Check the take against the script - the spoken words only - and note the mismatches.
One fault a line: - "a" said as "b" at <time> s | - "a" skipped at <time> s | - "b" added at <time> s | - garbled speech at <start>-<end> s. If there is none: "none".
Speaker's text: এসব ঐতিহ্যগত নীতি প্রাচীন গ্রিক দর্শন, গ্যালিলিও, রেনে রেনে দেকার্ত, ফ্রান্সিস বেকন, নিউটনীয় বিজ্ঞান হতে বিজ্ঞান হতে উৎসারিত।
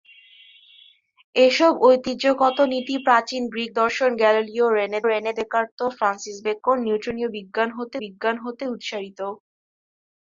none